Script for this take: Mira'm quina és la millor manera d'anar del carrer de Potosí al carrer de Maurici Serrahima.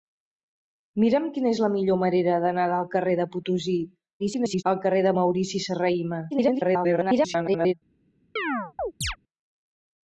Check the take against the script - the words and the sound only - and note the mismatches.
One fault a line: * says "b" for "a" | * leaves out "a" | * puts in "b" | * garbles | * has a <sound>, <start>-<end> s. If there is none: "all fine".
* garbles
* garbles
* has a chirp, 8.4-9.2 s